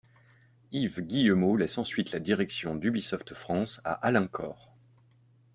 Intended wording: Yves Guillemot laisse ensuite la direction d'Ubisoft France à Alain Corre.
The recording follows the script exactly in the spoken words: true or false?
true